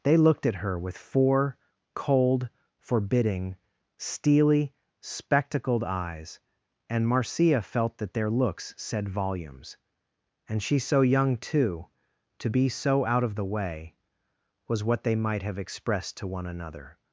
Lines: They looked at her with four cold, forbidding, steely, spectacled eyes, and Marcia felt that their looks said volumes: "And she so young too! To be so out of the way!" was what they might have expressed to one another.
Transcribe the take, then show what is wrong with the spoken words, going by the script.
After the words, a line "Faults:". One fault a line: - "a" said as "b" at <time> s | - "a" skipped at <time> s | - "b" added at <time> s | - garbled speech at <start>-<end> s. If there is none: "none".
They looked at her with four cold, forbidding, steely, spectacled eyes, and Marcia felt that their looks said volumes: "And she so young too! To be so out of the way!" was what they might have expressed to one another.
Faults:
none